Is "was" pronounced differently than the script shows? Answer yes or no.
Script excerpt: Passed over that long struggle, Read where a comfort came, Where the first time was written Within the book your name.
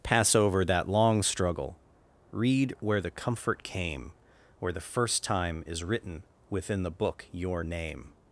yes